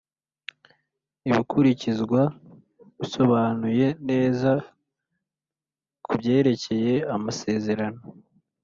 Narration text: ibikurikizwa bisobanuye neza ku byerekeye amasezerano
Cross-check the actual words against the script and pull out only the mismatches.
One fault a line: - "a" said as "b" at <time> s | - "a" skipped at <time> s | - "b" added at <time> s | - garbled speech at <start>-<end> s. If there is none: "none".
none